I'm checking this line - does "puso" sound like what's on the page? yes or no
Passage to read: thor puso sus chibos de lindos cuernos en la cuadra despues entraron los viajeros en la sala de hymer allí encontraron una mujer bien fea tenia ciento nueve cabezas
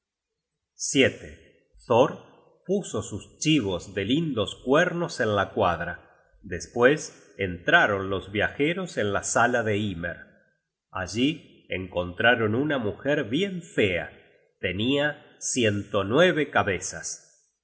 yes